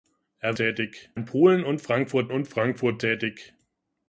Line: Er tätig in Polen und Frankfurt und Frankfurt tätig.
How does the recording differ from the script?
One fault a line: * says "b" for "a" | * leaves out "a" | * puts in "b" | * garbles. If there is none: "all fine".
all fine